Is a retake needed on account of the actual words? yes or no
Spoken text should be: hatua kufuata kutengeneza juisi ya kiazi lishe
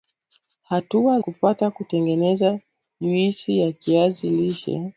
no